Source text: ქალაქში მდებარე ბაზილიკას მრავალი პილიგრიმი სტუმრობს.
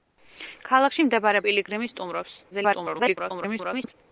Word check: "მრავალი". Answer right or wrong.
wrong